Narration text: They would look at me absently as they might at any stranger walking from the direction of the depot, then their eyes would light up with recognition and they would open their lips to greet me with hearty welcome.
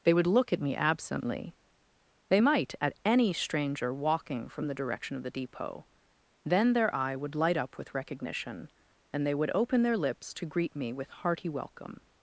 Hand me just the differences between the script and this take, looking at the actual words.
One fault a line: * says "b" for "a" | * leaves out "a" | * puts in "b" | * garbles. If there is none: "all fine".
* leaves out "as"
* says "eye" for "eyes"